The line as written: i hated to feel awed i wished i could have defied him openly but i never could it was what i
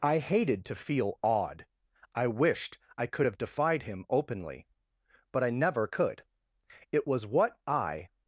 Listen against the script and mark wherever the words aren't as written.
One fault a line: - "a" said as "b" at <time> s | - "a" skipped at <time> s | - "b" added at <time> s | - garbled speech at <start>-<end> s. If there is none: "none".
none